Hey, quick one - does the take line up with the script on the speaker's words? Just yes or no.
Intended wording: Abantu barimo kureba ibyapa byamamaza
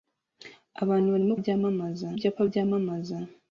no